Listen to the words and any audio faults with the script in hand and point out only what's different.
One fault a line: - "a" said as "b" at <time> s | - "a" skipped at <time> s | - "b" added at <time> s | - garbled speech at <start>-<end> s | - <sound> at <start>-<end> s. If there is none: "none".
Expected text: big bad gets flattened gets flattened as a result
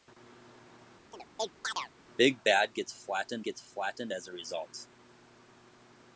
- chirp at 1.1-1.9 s